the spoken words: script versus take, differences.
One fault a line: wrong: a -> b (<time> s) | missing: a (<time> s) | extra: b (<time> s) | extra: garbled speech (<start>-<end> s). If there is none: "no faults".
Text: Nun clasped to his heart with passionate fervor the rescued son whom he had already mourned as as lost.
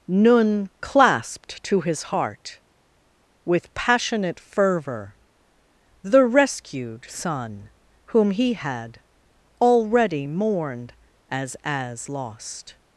no faults